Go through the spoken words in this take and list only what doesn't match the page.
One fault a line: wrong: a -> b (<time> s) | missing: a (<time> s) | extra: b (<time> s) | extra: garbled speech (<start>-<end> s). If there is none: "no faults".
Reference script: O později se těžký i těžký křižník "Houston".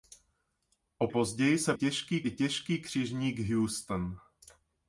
no faults